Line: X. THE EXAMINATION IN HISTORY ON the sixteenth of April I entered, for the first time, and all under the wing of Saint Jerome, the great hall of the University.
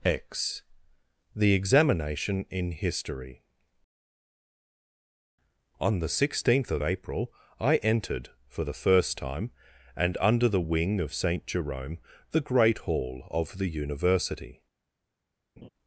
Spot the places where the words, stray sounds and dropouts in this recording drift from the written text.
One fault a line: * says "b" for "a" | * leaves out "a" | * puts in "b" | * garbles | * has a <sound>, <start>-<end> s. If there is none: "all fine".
* leaves out "all"
* has a laugh, 15.6-15.7 s